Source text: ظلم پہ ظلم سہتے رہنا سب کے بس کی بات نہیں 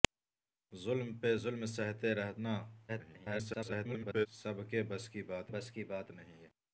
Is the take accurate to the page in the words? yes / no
no